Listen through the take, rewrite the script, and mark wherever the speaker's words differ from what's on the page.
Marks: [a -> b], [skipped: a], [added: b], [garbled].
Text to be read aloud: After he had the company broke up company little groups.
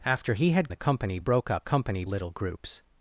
After he had the company broke up company little groups.